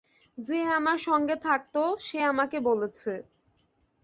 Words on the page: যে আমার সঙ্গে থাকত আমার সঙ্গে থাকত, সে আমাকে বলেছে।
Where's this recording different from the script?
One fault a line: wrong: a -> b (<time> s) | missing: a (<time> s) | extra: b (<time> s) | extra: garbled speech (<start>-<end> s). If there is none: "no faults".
missing: আমার সঙ্গে থাকত (1.8 s)